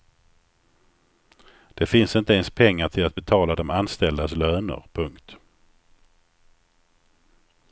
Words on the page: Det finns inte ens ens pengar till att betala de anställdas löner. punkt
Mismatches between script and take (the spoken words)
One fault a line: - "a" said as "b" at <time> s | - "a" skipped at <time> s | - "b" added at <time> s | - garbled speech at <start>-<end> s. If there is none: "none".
- "ens" skipped at 2.5 s